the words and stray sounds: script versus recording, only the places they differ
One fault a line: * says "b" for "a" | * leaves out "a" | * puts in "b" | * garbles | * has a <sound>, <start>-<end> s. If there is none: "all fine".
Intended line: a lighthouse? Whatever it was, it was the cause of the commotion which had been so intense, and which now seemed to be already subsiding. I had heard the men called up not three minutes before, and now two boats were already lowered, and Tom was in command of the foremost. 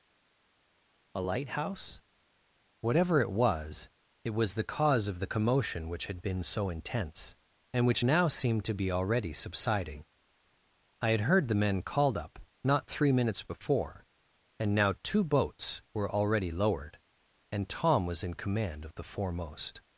all fine